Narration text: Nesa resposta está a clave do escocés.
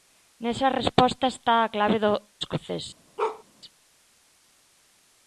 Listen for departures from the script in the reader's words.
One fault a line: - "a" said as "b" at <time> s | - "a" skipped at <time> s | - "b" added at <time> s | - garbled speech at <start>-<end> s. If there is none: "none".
none